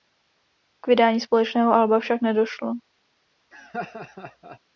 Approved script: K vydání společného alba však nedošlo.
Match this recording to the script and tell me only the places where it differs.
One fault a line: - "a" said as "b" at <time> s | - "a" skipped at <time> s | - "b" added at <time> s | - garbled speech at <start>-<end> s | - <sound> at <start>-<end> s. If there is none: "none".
- laugh at 3.5-4.6 s